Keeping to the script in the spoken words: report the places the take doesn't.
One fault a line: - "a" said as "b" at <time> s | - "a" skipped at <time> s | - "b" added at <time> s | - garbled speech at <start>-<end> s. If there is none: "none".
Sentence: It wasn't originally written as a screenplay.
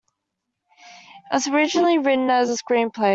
- "wasn't" said as "was" at 1.4 s